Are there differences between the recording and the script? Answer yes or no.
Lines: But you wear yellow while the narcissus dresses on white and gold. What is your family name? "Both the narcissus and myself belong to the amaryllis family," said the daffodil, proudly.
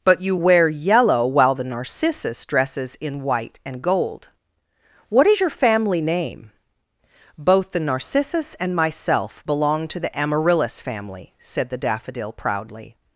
yes